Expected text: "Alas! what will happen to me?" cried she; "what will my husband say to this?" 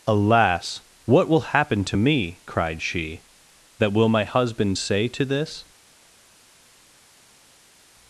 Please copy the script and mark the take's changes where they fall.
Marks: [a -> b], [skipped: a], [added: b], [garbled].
"Alas! what will happen to me?" cried she; ["what -> that] will my husband say to this?"